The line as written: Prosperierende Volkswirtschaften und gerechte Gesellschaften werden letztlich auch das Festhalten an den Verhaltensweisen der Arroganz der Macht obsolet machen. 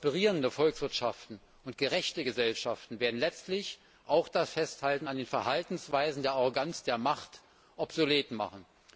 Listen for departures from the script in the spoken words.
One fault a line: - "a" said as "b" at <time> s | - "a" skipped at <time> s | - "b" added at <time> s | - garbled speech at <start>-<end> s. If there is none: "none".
none